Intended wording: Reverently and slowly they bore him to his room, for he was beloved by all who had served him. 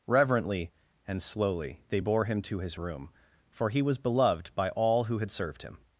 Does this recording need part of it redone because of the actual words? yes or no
no